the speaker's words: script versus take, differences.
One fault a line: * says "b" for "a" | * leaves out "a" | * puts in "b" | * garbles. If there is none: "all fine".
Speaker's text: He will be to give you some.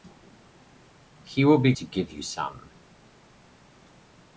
all fine